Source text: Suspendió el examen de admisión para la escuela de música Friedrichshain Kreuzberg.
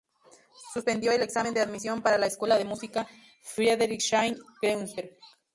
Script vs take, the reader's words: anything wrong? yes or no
no